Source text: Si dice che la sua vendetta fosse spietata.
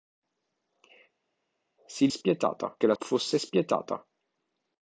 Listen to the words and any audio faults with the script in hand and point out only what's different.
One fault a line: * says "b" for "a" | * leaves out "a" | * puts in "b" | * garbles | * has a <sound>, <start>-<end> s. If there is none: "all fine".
* says "spietata" for "dice"
* leaves out "sua vendetta"